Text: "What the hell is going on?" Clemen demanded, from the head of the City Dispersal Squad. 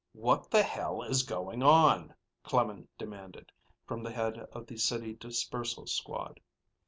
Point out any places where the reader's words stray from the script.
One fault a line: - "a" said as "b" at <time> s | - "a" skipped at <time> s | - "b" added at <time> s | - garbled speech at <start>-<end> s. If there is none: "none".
none